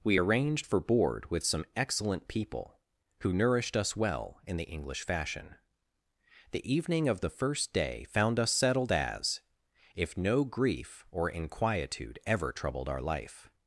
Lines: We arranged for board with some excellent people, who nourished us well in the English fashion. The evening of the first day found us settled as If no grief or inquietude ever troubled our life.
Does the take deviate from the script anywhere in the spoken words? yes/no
no